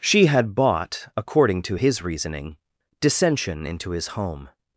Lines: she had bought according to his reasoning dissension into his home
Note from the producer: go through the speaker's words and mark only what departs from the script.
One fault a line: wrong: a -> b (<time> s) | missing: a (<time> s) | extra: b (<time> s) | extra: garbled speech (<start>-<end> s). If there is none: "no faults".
no faults